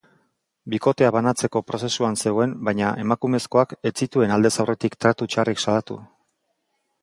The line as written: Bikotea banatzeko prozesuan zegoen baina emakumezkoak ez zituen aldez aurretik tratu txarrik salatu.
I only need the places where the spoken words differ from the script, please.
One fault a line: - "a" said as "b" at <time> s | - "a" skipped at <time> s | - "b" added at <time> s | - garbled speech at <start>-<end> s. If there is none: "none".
none